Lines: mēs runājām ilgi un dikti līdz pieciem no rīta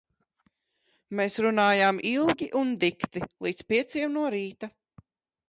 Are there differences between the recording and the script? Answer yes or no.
no